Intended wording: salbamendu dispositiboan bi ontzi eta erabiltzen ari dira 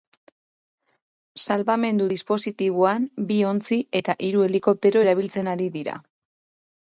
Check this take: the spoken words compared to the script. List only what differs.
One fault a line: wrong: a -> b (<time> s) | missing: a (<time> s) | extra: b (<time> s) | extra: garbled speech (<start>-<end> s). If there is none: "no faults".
extra: hiru helikoptero (4.3 s)